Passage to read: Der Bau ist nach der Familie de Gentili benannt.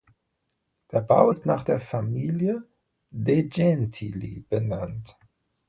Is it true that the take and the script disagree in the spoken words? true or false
false